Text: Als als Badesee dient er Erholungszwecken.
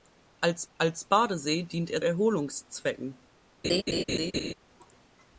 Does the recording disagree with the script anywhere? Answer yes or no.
no